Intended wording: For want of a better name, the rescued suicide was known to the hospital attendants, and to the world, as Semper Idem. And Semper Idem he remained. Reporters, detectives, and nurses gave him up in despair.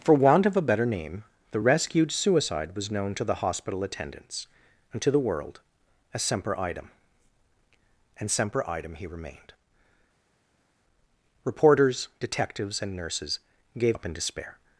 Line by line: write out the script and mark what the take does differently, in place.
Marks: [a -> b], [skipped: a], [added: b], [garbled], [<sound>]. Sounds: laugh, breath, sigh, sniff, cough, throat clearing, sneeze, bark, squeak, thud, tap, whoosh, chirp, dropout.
For want of a better name, the rescued suicide was known to the hospital attendants, and to the world, as Semper Idem. And Semper Idem he remained. Reporters, detectives, and nurses gave [skipped: him] up in despair.